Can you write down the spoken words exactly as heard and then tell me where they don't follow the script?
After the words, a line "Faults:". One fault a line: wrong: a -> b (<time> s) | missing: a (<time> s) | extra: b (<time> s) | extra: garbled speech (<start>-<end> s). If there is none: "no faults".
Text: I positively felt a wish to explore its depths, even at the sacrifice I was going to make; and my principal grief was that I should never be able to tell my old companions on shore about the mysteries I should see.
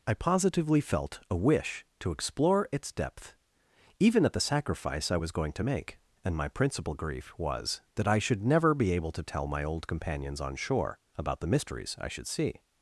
I positively felt a wish to explore its depth, even at the sacrifice I was going to make; and my principal grief was that I should never be able to tell my old companions on shore about the mysteries I should see.
Faults:
wrong: depths -> depth (2.9 s)